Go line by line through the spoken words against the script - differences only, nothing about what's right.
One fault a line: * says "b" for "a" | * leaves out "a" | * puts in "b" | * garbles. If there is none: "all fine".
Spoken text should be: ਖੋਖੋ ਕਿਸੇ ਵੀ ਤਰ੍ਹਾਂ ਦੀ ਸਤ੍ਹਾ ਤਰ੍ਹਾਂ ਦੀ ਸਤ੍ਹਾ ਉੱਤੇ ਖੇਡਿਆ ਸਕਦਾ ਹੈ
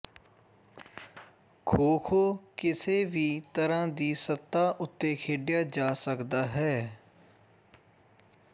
* leaves out "ਤਰ੍ਹਾਂ ਦੀ ਸਤ੍ਹਾ"
* puts in "ਜਾ"